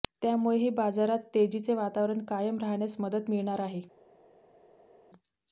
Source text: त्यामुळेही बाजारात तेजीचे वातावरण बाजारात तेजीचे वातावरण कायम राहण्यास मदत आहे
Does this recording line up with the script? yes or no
no